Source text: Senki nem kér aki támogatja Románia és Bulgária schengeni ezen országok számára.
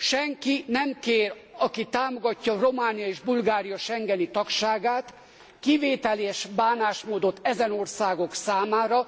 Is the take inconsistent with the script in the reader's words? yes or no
yes